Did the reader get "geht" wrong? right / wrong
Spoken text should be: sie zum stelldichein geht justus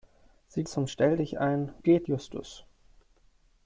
right